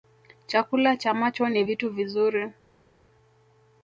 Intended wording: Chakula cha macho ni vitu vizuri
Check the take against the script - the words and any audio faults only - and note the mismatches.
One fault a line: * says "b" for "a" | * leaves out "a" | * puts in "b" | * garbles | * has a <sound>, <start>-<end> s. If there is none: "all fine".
all fine